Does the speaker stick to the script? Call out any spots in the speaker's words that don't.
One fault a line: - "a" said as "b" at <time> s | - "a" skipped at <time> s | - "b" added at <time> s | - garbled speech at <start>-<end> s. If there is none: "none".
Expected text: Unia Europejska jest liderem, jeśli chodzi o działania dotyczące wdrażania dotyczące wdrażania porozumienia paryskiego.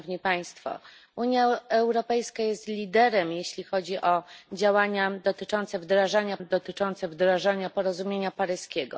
none